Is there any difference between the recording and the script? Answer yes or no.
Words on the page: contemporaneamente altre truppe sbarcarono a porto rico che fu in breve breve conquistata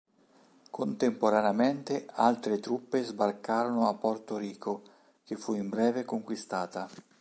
yes